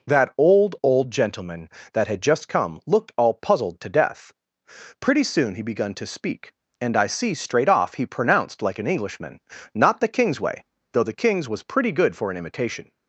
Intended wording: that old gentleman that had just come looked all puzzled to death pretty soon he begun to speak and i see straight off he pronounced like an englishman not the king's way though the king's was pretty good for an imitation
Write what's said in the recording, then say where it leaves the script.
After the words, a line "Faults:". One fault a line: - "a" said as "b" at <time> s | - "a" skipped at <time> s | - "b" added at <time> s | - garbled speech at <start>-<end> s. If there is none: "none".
that old old gentleman that had just come looked all puzzled to death pretty soon he begun to speak and i see straight off he pronounced like an englishman not the king's way though the king's was pretty good for an imitation
Faults:
- "old" added at 0.8 s